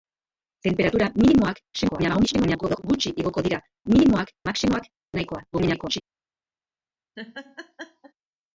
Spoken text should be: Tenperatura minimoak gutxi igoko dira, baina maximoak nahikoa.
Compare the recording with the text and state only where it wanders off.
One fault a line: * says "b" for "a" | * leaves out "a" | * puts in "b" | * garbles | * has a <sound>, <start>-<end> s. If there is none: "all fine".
* garbles
* says "minimoak" for "baina"
* garbles
* has a laugh, 7.2-8.1 s